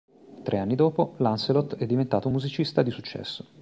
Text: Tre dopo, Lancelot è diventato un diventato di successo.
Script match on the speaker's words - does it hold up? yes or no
no